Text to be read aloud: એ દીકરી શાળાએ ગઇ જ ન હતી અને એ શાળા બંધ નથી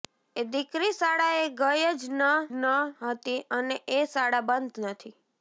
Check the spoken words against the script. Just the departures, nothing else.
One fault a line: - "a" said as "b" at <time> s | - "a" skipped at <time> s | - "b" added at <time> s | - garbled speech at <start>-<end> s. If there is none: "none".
- "ન" added at 2.5 s